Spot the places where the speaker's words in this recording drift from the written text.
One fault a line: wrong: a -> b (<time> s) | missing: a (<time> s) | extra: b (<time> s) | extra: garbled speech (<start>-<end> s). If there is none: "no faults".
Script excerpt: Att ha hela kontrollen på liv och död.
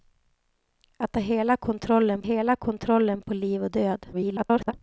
extra: hela kontrollen (2.2 s)
extra: garbled speech (4.1-4.7 s)